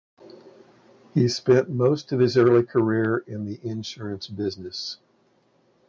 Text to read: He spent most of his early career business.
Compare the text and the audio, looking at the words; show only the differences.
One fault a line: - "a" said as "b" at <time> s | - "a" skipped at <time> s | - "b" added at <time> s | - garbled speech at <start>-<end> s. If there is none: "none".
- "in the insurance" added at 3.3 s